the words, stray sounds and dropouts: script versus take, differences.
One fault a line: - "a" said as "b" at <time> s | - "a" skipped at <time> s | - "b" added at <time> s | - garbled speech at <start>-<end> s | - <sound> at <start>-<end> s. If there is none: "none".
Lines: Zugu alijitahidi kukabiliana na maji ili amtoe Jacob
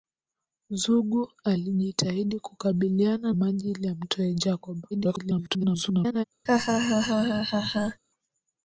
- "na" skipped at 3.3 s
- garbled speech at 4.9-6.2 s
- laugh at 6.5-8.0 s